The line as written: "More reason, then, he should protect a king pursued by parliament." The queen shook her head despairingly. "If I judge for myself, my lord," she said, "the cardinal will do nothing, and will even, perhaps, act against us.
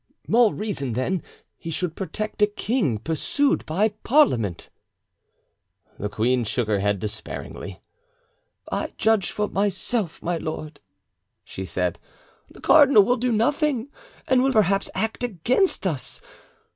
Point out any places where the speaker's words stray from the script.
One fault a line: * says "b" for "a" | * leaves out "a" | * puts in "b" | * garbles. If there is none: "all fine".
* leaves out "If"
* leaves out "even"